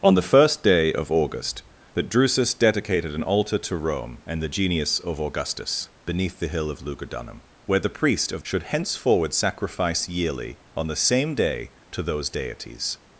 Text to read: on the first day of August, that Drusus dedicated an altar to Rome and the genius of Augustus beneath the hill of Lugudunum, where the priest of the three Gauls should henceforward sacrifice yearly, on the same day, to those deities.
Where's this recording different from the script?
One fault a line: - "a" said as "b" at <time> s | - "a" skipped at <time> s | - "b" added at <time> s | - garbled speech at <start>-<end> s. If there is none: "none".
- "the three Gauls" skipped at 8.4 s